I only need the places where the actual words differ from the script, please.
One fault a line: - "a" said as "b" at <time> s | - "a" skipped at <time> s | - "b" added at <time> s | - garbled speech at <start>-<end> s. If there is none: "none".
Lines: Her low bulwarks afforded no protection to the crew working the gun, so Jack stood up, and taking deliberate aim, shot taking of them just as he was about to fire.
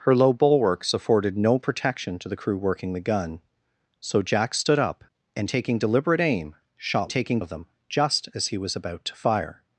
none